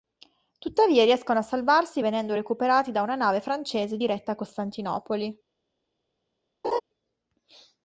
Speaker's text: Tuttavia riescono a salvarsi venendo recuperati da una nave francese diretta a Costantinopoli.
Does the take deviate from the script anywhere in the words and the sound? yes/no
yes